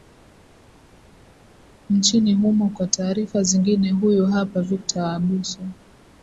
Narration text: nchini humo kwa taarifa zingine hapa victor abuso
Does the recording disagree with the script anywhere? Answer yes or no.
yes